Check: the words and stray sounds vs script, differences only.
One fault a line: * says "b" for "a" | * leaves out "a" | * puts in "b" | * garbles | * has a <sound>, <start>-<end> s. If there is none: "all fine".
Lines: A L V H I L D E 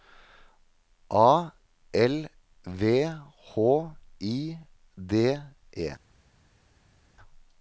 * leaves out "L"